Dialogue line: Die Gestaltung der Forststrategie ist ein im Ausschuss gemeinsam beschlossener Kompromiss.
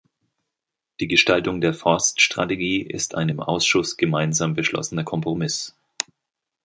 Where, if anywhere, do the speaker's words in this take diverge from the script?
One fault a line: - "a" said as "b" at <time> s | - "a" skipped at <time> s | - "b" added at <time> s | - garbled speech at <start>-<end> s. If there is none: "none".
none